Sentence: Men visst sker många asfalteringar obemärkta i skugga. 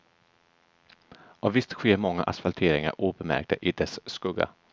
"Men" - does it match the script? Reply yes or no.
no